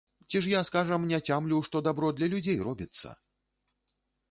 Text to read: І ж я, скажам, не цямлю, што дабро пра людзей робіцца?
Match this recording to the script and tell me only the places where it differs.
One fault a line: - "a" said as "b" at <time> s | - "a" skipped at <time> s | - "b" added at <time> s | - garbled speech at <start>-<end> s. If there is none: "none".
- "І" said as "Ці" at 0.3 s
- "пра" said as "для" at 2.2 s